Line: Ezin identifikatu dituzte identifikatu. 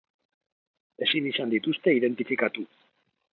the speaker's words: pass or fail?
fail